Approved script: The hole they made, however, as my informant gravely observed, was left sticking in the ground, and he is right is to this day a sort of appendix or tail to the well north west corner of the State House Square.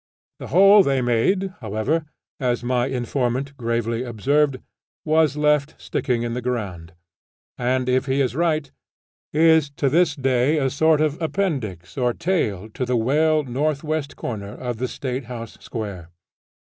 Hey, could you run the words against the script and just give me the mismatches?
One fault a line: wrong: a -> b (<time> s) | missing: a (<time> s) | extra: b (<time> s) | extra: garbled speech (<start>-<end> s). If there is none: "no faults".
extra: if (7.9 s)